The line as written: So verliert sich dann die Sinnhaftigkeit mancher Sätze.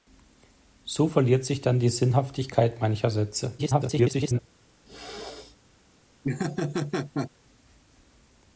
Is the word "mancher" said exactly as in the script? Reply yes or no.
yes